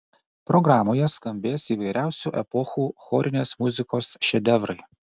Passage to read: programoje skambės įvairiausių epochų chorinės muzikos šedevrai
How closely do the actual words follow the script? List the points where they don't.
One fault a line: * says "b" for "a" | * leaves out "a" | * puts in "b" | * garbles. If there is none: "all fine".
all fine